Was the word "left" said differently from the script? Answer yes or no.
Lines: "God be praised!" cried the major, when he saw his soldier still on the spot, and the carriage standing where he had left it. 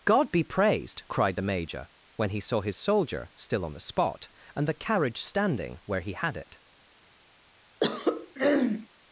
yes